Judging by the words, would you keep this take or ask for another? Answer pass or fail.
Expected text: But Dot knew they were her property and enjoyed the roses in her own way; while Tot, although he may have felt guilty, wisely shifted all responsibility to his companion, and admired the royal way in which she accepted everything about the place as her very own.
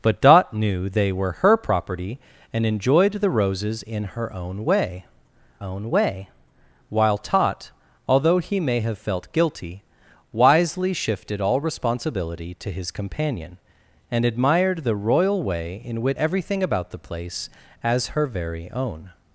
fail